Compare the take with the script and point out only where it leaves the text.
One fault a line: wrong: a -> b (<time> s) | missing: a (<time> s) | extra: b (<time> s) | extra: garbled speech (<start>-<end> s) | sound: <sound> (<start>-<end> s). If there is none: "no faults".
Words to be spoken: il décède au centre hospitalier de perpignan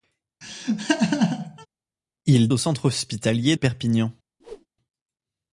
sound: laugh (0.4-1.7 s)
missing: décède (2.5 s)
missing: de (3.6 s)
sound: whoosh (4.4-4.7 s)